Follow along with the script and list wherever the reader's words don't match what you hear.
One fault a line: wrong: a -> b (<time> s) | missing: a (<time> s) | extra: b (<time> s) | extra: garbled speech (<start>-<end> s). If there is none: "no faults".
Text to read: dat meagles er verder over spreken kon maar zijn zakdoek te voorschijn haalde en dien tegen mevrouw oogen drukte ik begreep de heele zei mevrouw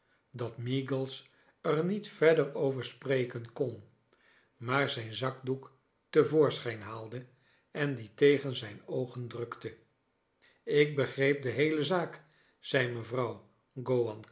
extra: niet (1.9 s)
wrong: mevrouw -> zijn (8.6 s)
extra: zaak (11.8 s)